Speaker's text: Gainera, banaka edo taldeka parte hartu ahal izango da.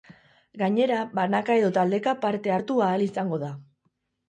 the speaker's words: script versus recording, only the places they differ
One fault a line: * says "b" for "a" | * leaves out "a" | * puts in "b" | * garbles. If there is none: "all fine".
all fine